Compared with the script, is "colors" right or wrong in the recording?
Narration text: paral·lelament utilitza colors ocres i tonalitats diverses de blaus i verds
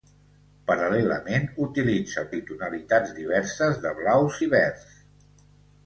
wrong